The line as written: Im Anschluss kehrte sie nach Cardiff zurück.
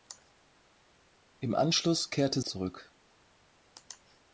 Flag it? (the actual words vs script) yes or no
yes